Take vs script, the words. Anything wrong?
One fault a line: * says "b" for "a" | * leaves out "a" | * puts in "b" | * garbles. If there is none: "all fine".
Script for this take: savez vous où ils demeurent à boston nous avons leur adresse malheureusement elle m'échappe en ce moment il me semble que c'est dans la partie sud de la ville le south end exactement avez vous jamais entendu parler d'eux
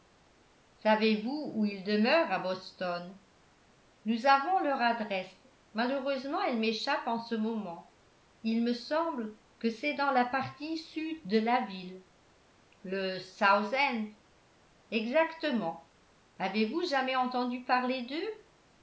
all fine